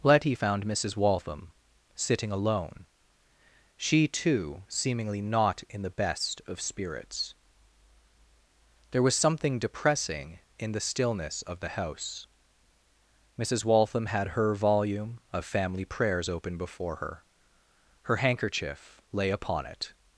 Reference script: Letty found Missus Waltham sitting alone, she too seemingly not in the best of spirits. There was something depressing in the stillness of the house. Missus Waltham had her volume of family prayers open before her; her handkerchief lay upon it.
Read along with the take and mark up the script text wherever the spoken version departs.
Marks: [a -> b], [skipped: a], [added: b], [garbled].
Letty found Missus Waltham sitting alone, she too seemingly not in the best of spirits. There was something depressing in the stillness of the house. Missus Waltham had her volume of family prayers open before her; her handkerchief lay upon it.